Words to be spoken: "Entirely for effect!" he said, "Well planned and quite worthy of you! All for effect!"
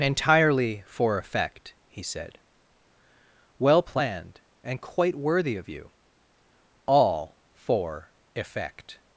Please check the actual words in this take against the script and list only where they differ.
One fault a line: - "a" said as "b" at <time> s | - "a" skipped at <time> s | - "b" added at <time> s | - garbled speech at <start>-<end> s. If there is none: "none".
none